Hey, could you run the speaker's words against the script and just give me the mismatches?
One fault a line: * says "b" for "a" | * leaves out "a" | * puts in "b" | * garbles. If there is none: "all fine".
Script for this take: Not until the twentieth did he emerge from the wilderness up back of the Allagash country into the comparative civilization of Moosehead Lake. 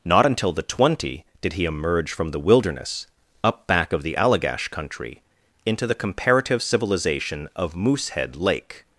* says "twenty" for "twentieth"